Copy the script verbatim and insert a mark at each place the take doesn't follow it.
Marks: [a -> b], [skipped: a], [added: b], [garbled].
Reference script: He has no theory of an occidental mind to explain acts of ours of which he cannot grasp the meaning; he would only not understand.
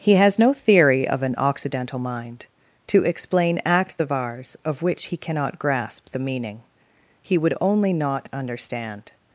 He has no theory of an occidental mind to explain acts of ours of which he cannot grasp the meaning; he would only not understand.